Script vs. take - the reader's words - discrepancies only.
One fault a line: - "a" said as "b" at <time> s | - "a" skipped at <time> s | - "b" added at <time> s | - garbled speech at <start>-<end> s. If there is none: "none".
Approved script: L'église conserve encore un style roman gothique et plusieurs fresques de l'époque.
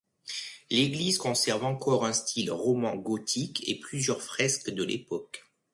none